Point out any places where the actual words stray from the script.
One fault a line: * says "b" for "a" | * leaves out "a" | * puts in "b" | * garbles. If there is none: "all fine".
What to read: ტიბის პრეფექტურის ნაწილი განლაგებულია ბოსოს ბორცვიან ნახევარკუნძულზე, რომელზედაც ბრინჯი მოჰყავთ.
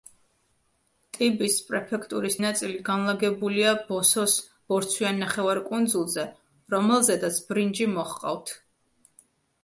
all fine